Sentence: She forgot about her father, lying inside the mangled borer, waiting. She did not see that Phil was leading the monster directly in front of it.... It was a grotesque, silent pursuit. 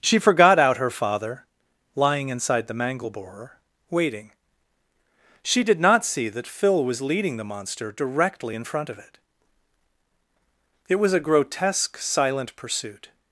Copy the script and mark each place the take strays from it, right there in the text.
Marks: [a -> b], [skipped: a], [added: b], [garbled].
She forgot [about -> out] her father, lying inside the [mangled -> mangle] borer, waiting. She did not see that Phil was leading the monster directly in front of it.... It was a grotesque, silent pursuit.